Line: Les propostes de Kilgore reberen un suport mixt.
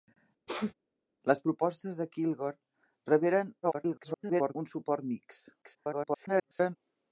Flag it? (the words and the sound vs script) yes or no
yes